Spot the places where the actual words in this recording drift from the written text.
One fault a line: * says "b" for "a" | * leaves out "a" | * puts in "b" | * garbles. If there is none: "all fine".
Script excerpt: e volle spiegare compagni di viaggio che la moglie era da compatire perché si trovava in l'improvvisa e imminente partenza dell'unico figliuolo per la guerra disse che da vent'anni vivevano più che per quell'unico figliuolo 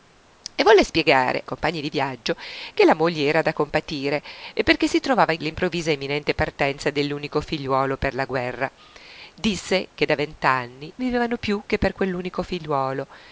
all fine